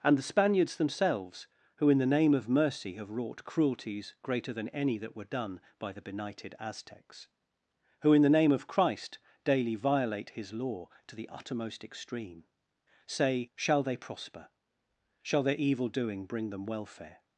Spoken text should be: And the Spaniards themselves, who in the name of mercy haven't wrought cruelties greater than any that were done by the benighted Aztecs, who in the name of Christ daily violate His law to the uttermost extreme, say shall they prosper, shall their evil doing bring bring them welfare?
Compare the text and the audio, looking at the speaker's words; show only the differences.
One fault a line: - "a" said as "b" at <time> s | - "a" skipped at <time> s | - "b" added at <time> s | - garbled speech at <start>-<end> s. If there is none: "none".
- "haven't" said as "have" at 3.0 s
- "bring" skipped at 16.5 s